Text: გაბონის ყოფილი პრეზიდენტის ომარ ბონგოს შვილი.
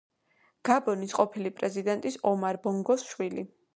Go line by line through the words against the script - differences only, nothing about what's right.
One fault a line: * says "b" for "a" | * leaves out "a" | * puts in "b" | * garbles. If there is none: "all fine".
all fine